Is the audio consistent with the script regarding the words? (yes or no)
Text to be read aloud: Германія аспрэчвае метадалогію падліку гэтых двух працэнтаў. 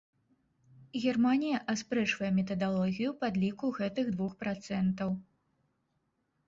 yes